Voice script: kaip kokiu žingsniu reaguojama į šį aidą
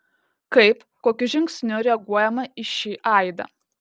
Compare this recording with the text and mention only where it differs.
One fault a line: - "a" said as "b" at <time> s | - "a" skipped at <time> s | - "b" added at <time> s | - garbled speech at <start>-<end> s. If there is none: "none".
none